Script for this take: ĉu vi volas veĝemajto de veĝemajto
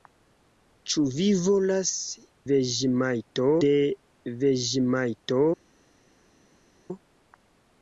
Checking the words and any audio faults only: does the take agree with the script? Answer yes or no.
yes